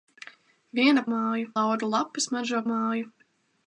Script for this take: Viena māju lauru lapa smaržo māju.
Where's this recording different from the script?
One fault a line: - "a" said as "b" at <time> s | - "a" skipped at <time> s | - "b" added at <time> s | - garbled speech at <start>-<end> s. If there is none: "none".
none